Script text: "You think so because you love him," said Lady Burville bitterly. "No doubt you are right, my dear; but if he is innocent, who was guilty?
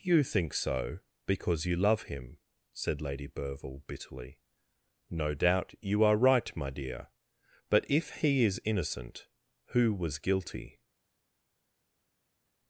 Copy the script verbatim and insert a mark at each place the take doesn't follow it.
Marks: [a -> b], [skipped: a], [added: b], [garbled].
"You think so because you love him," said Lady Burville bitterly. "No doubt you are right, my dear; but if he is innocent, who was guilty?